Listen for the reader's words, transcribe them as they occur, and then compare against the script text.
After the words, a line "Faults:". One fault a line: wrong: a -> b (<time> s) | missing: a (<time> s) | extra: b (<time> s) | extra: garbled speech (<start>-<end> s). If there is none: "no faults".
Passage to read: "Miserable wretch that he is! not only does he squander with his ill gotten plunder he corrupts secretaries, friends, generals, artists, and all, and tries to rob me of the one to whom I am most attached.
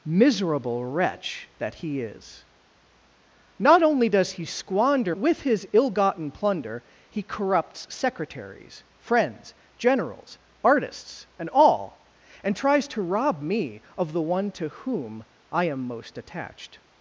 "Miserable wretch that he is! not only does he squander with his ill gotten plunder he corrupts secretaries, friends, generals, artists, and all, and tries to rob me of the one to whom I am most attached.
Faults:
no faults